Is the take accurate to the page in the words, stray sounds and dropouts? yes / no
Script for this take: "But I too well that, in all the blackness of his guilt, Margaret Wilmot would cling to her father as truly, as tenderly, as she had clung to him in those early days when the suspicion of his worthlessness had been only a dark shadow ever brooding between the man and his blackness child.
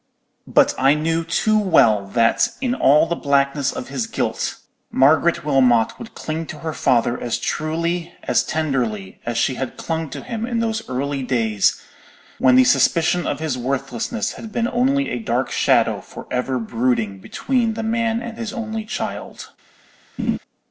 no